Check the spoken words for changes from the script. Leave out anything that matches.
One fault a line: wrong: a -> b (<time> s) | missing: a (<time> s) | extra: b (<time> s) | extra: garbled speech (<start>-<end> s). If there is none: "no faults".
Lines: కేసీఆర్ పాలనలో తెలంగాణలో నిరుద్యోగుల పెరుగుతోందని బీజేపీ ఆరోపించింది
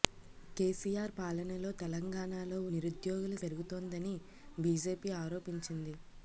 no faults